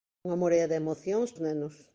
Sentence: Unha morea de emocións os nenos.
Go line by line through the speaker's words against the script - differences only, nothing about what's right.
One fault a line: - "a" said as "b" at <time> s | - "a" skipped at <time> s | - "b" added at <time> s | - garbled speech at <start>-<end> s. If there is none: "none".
none